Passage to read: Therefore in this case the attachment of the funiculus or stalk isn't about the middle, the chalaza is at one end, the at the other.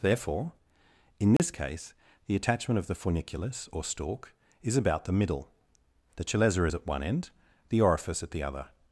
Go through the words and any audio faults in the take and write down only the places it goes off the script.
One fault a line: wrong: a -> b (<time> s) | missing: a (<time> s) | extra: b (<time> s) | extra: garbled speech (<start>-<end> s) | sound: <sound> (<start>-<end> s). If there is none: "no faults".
sound: dropout (1.4-1.4 s)
wrong: isn't -> is (4.6 s)
extra: orifice (7.8 s)